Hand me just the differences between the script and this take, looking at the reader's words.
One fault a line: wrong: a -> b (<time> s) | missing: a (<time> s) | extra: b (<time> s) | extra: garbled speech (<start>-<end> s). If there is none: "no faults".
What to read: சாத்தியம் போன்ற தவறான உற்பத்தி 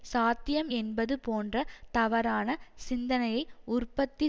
extra: என்பது (0.7 s)
extra: சிந்தனையை (2.9 s)